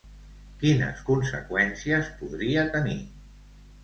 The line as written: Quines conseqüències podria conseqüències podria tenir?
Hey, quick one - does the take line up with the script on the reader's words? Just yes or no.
no